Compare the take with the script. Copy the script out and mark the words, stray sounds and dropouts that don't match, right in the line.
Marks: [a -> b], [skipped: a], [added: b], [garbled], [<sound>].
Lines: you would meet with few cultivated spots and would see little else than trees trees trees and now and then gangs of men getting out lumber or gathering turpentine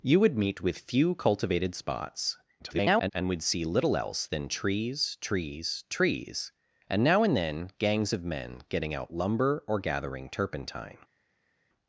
you would meet with few cultivated spots [garbled] and would see little else than trees trees trees and now and then gangs of men getting out lumber or gathering turpentine